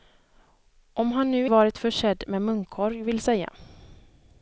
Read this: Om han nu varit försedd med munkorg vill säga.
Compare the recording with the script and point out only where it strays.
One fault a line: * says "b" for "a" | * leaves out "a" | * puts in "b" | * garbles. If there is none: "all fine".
all fine